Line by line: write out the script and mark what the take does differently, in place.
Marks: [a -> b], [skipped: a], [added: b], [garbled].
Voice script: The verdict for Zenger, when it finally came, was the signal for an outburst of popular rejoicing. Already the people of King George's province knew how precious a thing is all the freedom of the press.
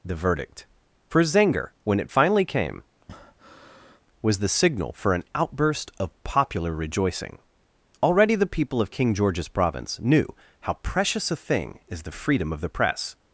The verdict for Zenger, when it finally came, was the signal for an outburst of popular rejoicing. Already the people of King George's province knew how precious a thing is [skipped: all] the freedom of the press.